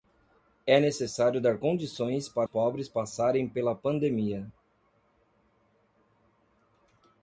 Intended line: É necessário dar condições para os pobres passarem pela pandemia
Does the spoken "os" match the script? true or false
false